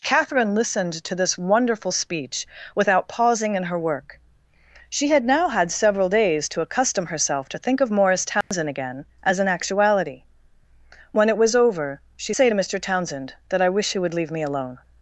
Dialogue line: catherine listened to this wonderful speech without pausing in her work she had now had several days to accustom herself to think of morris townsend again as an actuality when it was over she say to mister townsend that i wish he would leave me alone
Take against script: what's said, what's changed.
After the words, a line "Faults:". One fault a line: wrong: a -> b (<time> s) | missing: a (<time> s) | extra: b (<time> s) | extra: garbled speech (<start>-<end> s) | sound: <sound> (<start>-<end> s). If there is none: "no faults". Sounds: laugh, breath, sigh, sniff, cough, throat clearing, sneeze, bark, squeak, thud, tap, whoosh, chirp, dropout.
catherine listened to this wonderful speech without pausing in her work she had now had several days to accustom herself to think of morris townsend again as an actuality when it was over she say to mister townsend that i wish he would leave me alone
Faults:
sound: dropout (8.4-8.5 s)